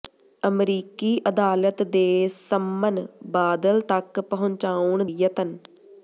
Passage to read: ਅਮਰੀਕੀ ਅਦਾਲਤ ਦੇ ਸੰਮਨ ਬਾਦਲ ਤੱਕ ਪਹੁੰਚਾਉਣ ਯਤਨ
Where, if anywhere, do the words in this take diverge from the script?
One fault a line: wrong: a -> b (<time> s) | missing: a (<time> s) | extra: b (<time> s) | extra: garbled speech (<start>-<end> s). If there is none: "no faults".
no faults